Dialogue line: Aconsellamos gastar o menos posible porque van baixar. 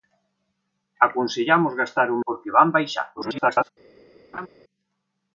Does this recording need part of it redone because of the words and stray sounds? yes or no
yes